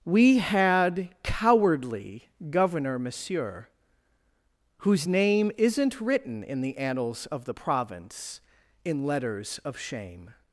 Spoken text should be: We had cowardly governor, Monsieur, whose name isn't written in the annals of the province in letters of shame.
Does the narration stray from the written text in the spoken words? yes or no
no